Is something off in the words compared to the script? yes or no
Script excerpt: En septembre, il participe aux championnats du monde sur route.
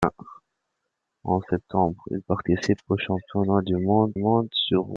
yes